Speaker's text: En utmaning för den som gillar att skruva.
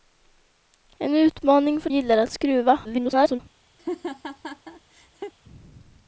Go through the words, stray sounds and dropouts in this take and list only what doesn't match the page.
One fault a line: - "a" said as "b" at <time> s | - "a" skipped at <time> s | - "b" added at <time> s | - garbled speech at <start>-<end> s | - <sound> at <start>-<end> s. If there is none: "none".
- "den som" skipped at 1.9 s
- garbled speech at 2.8-3.4 s
- laugh at 3.8-5.3 s